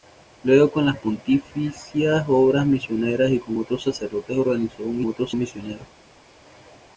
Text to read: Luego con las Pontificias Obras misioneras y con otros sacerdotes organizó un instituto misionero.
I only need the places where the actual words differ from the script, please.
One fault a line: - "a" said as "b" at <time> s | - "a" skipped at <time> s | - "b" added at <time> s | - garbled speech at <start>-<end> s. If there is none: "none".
- "instituto" said as "otros" at 5.1 s